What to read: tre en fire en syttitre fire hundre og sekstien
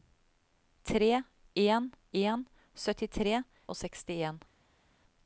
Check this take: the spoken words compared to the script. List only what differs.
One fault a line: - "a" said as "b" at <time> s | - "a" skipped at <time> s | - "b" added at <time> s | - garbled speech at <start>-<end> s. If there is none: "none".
- "fire" skipped at 1.9 s
- "fire hundre" skipped at 3.4 s